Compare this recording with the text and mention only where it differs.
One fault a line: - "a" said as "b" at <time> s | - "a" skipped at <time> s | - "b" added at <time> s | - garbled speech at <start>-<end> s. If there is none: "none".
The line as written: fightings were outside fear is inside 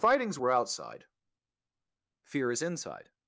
none